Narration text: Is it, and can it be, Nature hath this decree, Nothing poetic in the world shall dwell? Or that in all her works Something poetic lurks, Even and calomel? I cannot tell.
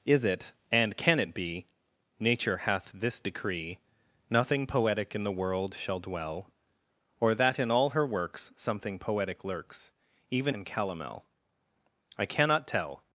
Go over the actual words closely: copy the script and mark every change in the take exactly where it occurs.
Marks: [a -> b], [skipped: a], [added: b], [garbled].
Is it, and can it be, Nature hath this decree, Nothing poetic in the world shall dwell? Or that in all her works Something poetic lurks, Even and calomel? I cannot tell.